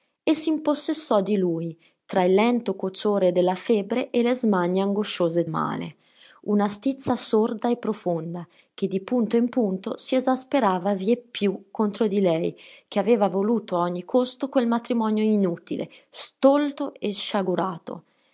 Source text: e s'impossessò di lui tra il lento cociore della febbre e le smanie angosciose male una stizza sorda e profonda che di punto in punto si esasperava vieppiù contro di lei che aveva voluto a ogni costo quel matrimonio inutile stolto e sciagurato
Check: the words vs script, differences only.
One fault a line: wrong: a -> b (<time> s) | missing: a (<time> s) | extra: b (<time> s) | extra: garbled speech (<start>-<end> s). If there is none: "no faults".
no faults